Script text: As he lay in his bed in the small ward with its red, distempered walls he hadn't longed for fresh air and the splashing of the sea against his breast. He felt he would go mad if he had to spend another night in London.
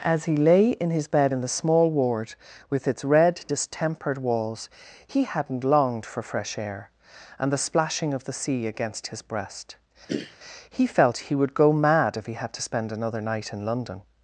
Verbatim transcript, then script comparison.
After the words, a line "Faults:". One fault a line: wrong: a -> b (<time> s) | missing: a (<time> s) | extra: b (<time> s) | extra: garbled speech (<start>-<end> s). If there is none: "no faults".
As he lay in his bed in the small ward with its red, distempered walls he hadn't longed for fresh air and the splashing of the sea against his breast. He felt he would go mad if he had to spend another night in London.
Faults:
no faults